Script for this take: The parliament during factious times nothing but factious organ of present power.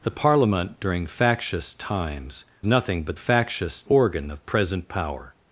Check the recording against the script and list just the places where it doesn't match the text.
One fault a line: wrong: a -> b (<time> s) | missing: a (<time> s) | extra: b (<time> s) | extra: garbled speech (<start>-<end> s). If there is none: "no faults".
no faults